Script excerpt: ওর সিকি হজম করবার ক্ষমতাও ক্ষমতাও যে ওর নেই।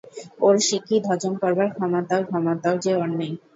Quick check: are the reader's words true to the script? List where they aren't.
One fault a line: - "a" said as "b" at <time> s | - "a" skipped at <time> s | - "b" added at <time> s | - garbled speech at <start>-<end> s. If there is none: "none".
none